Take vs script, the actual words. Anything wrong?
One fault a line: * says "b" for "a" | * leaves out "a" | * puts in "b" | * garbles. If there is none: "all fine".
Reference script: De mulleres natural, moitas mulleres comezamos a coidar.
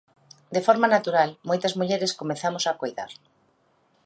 * says "forma" for "mulleres"